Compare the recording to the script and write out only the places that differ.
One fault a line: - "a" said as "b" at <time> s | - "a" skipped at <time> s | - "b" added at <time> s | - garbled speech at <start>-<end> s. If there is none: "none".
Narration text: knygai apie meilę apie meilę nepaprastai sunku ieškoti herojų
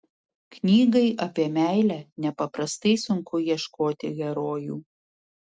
- "apie meilę" skipped at 2.0 s